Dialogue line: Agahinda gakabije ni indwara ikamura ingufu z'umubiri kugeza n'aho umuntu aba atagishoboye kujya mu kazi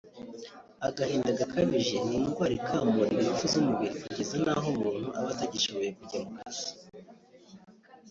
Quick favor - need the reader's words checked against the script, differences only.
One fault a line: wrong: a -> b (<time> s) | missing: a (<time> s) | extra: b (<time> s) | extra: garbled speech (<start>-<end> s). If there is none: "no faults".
no faults